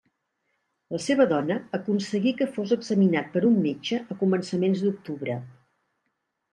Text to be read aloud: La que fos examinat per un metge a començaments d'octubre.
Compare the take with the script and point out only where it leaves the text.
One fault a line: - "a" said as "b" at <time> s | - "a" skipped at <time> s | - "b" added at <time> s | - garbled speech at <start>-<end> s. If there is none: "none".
- "seva dona aconseguí" added at 1.1 s